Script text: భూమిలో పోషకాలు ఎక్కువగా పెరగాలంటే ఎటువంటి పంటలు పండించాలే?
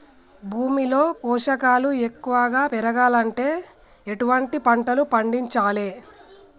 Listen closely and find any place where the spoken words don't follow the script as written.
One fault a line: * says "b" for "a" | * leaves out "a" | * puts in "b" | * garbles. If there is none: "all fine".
all fine